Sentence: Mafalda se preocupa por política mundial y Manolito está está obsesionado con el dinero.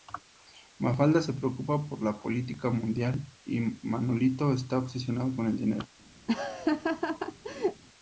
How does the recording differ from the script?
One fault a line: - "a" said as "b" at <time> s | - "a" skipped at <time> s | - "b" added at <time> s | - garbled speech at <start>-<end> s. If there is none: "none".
- "la" added at 2.0 s
- "está" skipped at 4.8 s